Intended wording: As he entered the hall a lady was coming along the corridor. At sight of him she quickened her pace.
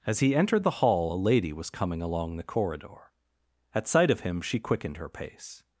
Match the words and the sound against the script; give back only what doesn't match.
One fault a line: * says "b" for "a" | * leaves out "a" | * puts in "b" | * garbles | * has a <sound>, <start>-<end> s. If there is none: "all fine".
all fine